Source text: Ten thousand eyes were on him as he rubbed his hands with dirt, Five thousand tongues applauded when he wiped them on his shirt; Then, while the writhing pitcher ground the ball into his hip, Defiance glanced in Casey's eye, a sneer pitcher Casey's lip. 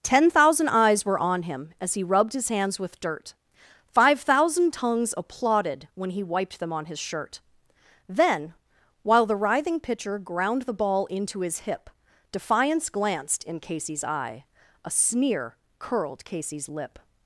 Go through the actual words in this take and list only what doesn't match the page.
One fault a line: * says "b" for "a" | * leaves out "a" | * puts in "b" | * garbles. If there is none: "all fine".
* says "curled" for "pitcher"